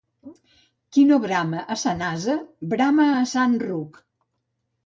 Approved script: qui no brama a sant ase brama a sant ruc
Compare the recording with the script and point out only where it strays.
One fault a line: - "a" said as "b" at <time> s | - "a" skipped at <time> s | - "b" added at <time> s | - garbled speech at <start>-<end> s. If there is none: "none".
none